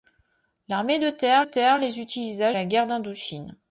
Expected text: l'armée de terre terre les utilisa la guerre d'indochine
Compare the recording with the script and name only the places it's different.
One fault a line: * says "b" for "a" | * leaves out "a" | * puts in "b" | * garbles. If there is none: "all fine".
all fine